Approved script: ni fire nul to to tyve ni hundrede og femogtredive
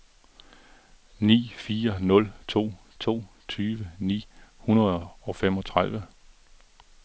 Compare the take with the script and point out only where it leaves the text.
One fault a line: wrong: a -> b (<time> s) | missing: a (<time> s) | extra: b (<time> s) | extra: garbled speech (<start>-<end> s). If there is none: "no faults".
no faults